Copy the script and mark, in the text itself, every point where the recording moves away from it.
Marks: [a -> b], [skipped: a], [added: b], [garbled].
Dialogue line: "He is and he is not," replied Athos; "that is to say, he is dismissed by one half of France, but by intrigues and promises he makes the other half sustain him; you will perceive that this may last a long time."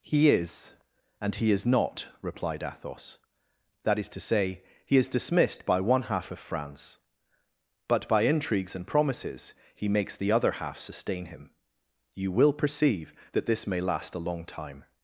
"He is and he is not," replied Athos; "that is to say, he is dismissed by one half of France, but by intrigues and promises he makes the other half sustain him; you will perceive that this may last a long time."